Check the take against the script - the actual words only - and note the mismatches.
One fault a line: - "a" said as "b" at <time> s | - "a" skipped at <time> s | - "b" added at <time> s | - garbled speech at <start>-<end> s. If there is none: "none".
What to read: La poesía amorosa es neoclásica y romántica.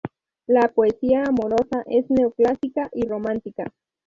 none